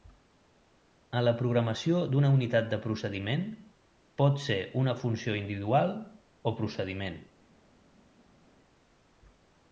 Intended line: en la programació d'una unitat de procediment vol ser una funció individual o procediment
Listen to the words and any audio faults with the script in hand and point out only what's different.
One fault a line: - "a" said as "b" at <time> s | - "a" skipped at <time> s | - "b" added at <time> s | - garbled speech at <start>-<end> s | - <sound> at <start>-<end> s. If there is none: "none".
- "vol" said as "pot" at 4.2 s